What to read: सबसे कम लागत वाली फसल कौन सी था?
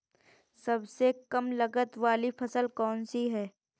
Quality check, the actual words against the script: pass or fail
fail